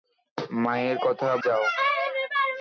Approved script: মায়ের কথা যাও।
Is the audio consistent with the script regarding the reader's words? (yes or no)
yes